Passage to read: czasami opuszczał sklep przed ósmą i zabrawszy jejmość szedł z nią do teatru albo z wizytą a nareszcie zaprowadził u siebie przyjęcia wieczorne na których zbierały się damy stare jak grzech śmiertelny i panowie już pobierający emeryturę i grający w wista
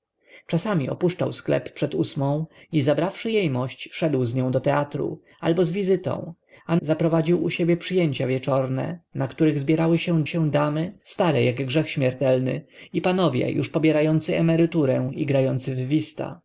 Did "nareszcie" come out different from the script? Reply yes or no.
yes